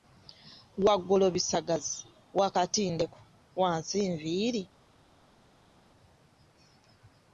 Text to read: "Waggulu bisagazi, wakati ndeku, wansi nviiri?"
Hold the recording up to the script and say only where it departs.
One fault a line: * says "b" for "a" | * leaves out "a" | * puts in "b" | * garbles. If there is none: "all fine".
all fine